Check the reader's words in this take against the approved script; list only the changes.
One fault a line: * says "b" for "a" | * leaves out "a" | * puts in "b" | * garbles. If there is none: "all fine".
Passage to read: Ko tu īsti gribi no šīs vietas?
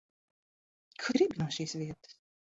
* leaves out "tu īsti"